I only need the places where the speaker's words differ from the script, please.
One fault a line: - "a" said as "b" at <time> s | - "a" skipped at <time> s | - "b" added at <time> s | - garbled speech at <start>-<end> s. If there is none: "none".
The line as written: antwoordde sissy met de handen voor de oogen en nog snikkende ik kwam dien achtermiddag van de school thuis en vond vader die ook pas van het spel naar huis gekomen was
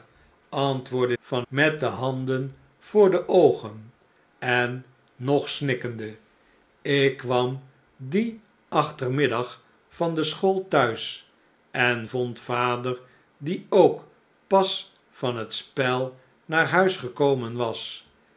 - "sissy" said as "van" at 1.2 s